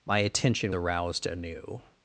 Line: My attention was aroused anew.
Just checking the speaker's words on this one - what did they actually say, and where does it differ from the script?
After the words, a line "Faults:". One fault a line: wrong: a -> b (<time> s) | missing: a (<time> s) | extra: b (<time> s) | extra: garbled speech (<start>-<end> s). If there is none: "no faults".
My attention aroused anew.
Faults:
missing: was (0.7 s)